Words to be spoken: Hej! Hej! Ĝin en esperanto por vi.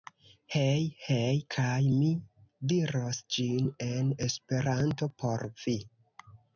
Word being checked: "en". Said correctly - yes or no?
yes